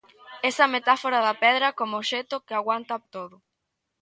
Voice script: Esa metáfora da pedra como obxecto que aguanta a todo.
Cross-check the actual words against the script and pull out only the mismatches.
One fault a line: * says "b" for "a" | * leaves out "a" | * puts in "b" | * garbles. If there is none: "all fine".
all fine